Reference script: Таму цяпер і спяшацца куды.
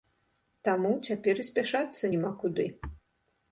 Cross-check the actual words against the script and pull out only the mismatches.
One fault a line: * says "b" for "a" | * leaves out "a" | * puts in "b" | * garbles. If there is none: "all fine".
* puts in "няма"